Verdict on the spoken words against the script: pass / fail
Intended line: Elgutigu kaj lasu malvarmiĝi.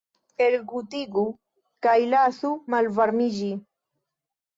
pass